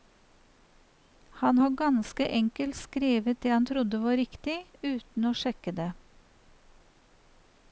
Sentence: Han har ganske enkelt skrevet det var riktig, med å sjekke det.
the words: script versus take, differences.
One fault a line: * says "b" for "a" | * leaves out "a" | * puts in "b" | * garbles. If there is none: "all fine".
* puts in "han trodde"
* says "uten" for "med"